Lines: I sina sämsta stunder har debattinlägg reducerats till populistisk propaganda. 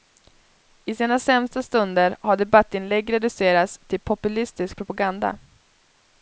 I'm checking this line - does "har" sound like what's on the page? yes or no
yes